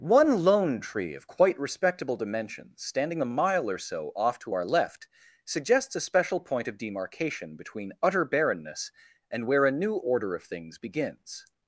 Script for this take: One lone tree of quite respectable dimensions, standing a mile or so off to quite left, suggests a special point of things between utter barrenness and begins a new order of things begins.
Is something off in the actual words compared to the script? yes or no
yes